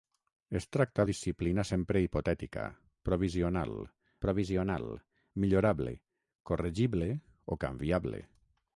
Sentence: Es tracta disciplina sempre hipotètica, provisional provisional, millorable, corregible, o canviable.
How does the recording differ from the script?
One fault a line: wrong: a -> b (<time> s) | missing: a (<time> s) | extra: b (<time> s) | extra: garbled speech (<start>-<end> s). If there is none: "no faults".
no faults